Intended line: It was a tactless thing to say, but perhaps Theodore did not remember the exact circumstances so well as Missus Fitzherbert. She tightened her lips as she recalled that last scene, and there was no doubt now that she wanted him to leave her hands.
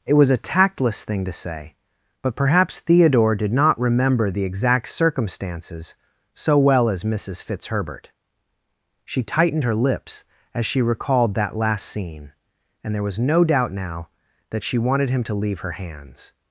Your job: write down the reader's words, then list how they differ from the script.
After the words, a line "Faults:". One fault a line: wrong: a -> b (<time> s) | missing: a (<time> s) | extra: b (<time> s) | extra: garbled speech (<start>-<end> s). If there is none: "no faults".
It was a tactless thing to say, but perhaps Theodore did not remember the exact circumstances so well as Missus Fitzherbert. She tightened her lips as she recalled that last scene, and there was no doubt now that she wanted him to leave her hands.
Faults:
no faults